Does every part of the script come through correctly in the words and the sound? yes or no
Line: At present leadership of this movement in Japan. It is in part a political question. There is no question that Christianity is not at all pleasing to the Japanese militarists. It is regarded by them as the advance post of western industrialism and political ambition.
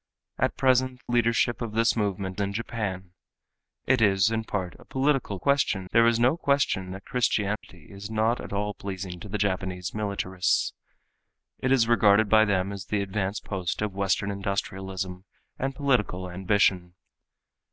no